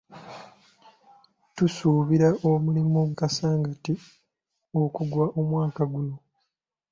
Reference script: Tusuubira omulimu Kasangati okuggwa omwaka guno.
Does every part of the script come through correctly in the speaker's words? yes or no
yes